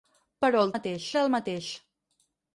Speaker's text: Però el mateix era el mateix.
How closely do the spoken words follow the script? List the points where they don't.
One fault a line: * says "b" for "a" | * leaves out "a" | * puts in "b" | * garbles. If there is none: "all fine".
all fine